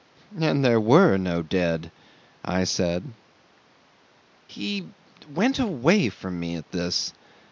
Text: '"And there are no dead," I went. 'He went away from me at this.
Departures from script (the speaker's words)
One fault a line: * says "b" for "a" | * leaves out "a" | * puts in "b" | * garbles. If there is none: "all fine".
* says "were" for "are"
* says "said" for "went"